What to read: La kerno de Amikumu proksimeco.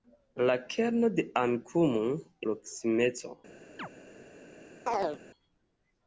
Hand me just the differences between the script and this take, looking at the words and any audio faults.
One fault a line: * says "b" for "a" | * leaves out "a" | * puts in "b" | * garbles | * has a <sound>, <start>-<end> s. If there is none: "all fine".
* has a chirp, 3.8-3.9 s
* has a chirp, 4.9-5.2 s